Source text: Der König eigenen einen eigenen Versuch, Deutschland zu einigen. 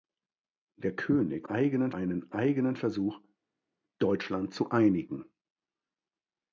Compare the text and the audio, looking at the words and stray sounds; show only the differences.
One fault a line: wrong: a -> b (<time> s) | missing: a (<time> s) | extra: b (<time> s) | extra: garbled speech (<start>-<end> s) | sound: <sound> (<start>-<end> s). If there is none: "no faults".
no faults